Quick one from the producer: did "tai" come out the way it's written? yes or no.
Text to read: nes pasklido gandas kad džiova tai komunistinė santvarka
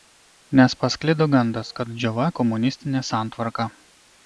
no